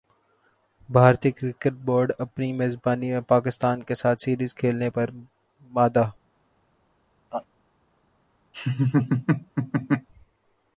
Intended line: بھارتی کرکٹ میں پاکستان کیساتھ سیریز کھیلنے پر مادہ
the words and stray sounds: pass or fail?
fail